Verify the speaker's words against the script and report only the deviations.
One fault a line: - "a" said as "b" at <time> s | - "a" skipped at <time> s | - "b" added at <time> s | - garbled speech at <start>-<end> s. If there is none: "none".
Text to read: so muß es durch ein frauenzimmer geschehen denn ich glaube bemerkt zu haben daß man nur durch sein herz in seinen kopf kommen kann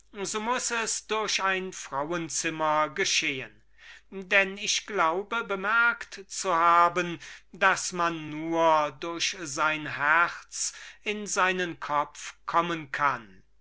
none